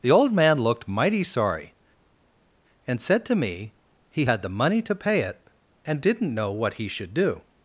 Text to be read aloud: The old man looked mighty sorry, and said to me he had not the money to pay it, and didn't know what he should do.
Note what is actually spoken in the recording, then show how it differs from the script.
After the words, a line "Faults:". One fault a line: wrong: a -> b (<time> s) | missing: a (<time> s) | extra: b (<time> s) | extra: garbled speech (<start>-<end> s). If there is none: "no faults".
The old man looked mighty sorry, and said to me he had the money to pay it, and didn't know what he should do.
Faults:
missing: not (4.4 s)